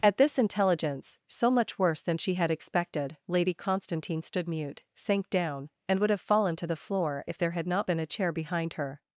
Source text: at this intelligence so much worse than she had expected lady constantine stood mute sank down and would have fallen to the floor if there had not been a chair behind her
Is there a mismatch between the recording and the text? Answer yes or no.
no